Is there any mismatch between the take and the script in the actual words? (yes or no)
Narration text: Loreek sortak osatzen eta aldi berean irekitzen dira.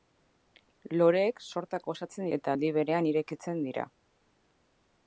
no